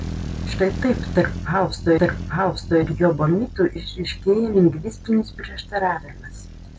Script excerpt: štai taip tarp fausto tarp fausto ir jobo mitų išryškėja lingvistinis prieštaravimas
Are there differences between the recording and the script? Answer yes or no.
no